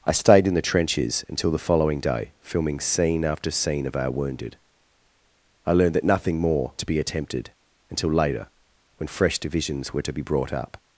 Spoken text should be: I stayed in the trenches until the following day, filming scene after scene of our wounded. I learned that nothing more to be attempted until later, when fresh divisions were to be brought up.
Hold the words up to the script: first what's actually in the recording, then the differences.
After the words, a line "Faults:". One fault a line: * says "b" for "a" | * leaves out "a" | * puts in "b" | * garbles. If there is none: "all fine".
I stayed in the trenches until the following day, filming scene after scene of our wounded. I learned that nothing more to be attempted until later, when fresh divisions were to be brought up.
Faults:
all fine